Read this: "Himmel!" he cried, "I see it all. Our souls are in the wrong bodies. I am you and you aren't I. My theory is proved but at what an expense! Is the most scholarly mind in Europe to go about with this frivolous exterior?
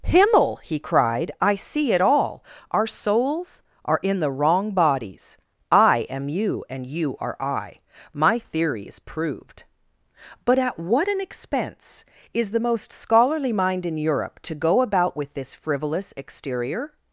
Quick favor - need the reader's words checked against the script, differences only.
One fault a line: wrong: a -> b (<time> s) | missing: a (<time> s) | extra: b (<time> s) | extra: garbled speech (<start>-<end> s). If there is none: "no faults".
wrong: aren't -> are (7.2 s)